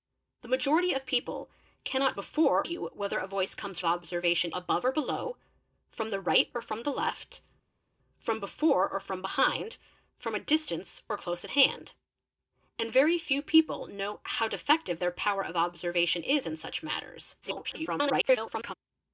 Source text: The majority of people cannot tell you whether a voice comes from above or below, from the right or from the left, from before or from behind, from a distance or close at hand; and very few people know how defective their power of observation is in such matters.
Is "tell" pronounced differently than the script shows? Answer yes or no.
yes